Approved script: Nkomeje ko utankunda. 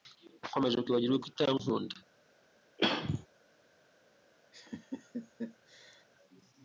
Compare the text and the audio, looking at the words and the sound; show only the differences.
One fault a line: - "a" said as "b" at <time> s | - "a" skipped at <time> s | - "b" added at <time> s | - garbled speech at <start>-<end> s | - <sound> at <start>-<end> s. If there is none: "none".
- "kwibagirwa" added at 0.8 s
- throat clearing at 2.8-3.3 s
- laugh at 4.5-6.1 s